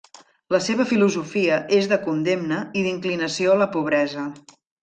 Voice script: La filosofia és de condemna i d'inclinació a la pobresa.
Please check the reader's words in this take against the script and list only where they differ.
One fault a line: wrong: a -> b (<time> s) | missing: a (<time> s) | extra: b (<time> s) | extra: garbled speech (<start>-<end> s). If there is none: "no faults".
extra: seva (0.7 s)